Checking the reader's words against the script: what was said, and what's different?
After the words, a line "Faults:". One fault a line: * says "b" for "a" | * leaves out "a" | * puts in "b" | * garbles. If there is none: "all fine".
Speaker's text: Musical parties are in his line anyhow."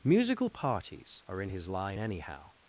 Musical parties are in his line anyhow."
Faults:
all fine